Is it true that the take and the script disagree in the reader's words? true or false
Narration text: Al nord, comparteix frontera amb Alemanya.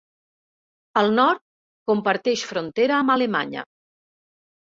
false